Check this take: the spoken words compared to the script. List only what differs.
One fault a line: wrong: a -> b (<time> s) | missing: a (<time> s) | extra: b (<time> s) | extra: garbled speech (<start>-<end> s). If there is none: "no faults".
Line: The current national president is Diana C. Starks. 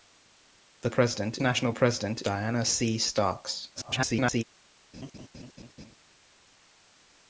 wrong: current -> president (0.9 s)
missing: is (2.2 s)
extra: garbled speech (3.7-4.4 s)